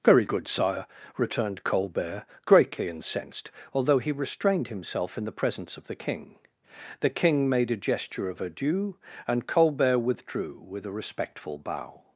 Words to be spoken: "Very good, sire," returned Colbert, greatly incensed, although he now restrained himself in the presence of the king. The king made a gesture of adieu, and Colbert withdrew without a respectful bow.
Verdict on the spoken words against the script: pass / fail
fail